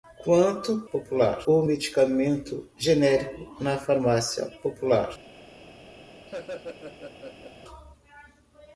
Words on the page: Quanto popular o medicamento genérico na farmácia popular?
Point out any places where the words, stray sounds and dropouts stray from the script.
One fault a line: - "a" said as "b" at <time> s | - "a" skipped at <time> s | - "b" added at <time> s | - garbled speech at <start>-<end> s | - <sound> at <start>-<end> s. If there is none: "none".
- laugh at 6.3-7.5 s